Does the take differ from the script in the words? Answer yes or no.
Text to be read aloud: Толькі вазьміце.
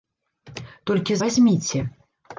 no